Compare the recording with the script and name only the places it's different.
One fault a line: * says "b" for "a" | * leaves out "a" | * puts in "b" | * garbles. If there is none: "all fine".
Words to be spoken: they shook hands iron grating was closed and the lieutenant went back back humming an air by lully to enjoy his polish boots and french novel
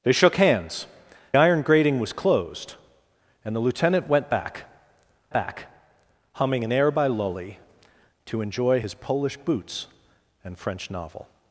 all fine